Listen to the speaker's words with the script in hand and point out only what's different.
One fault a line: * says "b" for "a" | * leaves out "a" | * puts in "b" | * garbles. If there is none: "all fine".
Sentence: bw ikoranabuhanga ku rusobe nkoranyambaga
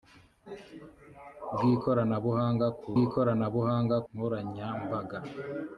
* says "ikoranabuhanga" for "rusobe"